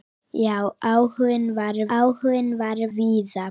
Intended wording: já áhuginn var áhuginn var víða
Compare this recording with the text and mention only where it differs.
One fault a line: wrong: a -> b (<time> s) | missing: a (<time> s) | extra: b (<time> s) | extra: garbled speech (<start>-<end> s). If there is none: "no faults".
no faults